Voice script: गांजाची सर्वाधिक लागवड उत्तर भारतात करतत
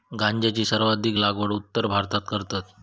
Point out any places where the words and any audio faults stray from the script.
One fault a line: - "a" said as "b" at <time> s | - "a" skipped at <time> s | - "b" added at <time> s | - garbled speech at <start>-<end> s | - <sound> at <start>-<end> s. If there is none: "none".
none